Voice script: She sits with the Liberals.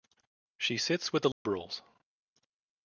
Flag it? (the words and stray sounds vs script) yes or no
yes